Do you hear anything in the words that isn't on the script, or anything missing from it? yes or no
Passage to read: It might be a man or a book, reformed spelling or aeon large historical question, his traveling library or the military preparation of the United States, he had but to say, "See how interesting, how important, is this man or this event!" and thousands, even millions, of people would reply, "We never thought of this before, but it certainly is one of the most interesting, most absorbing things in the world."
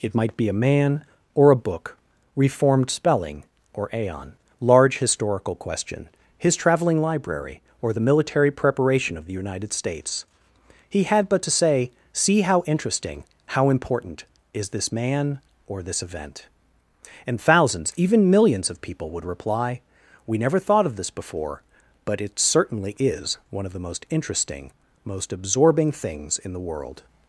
no